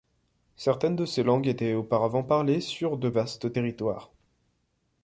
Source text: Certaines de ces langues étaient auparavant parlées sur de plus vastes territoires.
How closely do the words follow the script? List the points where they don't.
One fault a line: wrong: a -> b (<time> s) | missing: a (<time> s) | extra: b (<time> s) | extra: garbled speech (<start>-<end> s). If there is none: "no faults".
missing: plus (3.1 s)